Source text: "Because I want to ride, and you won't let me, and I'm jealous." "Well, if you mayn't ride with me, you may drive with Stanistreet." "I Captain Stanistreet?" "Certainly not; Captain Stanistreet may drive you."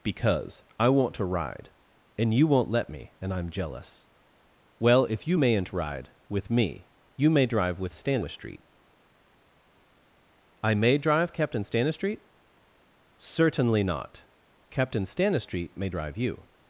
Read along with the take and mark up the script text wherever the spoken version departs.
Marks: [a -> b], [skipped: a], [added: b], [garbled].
"Because I want to ride, and you won't let me, and I'm jealous." "Well, if you mayn't ride with me, you may drive with Stanistreet." "I [added: may drive] Captain Stanistreet?" "Certainly not; Captain Stanistreet may drive you."